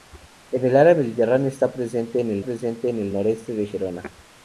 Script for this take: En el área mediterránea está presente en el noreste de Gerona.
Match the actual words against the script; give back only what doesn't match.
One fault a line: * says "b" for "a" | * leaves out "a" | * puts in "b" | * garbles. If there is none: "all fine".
* puts in "presente en el"